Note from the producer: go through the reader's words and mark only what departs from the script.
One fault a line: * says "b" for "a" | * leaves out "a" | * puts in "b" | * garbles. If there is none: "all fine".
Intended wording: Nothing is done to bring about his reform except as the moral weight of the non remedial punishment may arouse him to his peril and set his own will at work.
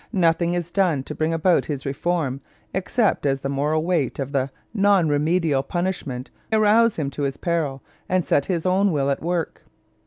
* leaves out "may"